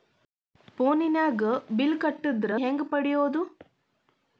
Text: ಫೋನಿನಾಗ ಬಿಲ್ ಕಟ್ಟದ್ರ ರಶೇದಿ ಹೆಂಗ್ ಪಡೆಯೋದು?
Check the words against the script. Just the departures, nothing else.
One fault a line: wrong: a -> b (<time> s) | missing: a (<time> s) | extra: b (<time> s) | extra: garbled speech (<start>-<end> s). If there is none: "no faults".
missing: ರಶೇದಿ (2.5 s)